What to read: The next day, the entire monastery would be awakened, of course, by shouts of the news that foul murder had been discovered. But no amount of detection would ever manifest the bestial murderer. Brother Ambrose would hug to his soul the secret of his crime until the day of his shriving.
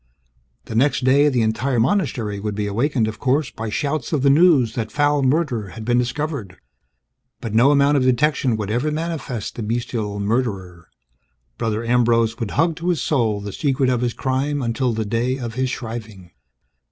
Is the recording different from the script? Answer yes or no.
no